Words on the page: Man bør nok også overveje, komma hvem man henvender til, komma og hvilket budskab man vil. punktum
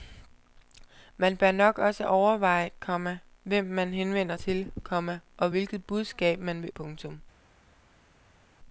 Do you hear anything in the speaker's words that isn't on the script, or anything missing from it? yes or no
no